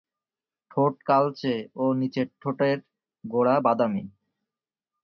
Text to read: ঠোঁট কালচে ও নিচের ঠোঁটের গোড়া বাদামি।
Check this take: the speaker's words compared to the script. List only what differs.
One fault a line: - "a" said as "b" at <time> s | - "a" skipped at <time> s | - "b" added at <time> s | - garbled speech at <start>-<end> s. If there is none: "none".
none